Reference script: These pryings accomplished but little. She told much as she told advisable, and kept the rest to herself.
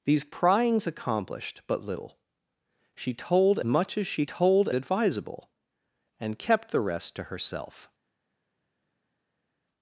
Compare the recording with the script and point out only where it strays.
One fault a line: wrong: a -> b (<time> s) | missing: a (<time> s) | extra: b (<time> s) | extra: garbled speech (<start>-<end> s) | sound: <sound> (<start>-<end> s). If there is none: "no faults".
no faults